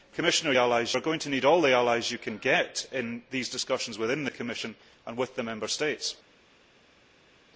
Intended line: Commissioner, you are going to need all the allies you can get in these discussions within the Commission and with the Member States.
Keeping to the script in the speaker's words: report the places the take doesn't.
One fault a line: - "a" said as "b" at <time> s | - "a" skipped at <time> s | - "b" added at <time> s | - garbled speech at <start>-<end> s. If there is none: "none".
- "you" said as "allies" at 0.6 s